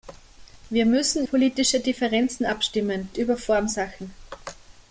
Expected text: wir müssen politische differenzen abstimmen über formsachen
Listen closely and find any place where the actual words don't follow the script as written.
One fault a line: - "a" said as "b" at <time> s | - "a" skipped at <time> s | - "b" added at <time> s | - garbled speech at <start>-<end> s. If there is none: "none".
none